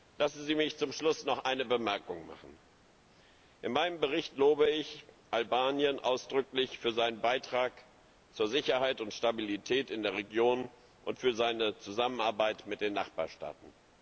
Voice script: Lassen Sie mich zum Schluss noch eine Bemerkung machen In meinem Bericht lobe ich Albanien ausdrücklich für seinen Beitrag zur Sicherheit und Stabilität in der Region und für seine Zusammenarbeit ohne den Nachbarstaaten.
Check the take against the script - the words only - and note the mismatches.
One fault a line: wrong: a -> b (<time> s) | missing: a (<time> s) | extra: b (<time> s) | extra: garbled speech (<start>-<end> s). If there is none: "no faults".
wrong: ohne -> mit (12.7 s)